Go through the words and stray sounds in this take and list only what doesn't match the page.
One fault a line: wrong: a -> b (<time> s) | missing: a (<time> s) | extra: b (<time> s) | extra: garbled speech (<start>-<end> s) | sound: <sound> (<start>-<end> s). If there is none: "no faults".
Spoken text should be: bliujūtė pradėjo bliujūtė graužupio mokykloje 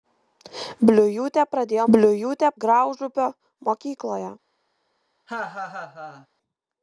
sound: laugh (5.3-6.3 s)